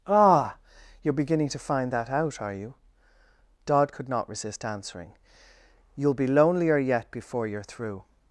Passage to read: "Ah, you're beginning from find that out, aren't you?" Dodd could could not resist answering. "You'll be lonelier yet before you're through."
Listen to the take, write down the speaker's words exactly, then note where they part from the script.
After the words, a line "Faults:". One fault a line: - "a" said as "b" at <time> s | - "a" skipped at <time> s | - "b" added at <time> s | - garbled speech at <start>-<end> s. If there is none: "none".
"Ah, you're beginning to find that out, are you?" Dodd could not resist answering. "You'll be lonelier yet before you're through."
Faults:
- "from" said as "to" at 1.5 s
- "aren't" said as "are" at 2.4 s
- "could" skipped at 4.1 s